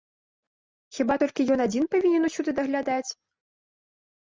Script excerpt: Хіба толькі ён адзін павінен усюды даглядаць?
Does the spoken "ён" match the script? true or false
true